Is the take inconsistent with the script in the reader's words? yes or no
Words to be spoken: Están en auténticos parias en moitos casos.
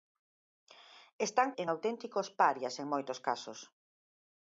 no